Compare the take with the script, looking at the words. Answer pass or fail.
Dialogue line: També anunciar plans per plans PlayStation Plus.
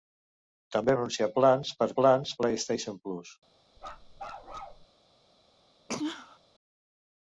pass